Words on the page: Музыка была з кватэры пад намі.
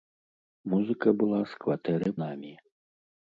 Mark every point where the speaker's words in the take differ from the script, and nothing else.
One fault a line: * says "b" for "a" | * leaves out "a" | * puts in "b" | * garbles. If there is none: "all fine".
* leaves out "пад"